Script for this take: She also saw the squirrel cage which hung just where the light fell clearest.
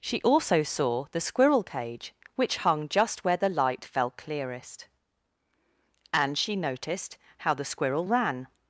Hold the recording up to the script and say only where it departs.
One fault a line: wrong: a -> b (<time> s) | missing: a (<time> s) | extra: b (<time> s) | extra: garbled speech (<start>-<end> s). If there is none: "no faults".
extra: And she noticed how the squirrel ran (6.1 s)